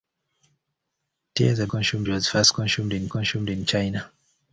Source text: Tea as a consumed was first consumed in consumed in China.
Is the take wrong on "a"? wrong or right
right